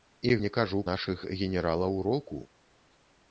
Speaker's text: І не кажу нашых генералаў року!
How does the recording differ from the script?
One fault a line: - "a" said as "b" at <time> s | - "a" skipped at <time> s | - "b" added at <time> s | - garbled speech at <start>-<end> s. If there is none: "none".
none